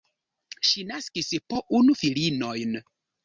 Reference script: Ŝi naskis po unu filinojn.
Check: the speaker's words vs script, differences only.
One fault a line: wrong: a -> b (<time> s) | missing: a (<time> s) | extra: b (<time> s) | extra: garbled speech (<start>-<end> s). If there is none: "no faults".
no faults